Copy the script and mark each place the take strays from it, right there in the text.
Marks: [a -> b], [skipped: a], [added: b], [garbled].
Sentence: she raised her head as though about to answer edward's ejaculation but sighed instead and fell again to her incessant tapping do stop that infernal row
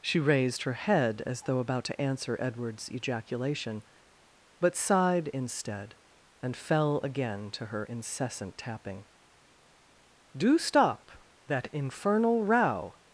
she raised her head as though about to answer edward's ejaculation but sighed instead and fell again to her incessant tapping do stop that infernal row